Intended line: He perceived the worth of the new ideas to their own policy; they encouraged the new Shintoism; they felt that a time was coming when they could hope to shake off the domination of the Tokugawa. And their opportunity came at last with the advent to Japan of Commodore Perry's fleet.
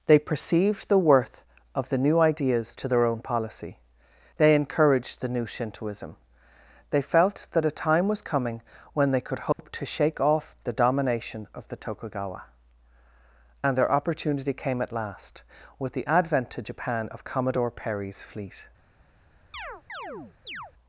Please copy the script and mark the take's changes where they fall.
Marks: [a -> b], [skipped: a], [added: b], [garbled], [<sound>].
[He -> They] perceived the worth of the new ideas to their own policy; they encouraged the new Shintoism; they felt that a time was coming when they could hope [dropout] to shake off the domination of the Tokugawa. And their opportunity came at last with the advent to Japan of Commodore Perry's fleet. [chirp]